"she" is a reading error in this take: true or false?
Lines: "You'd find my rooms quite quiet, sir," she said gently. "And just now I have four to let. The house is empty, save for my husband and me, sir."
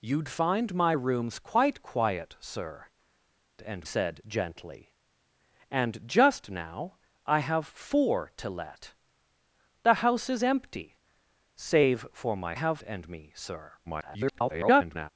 true